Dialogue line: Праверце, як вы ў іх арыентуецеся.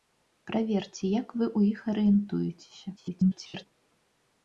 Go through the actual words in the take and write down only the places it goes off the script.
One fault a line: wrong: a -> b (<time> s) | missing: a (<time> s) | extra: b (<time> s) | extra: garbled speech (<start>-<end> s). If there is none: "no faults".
extra: garbled speech (3.0-3.7 s)